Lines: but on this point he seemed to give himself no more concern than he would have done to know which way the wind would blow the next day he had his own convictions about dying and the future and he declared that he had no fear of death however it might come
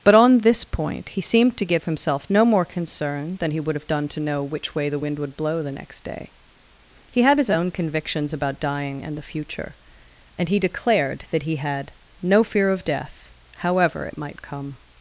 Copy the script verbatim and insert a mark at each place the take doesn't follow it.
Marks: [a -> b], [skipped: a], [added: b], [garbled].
but on this point he seemed to give himself no more concern than he would have done to know which way the wind would blow the next day he had his own convictions about dying and the future and he declared that he had no fear of death however it might come